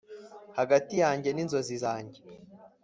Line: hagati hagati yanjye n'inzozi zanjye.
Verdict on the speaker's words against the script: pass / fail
fail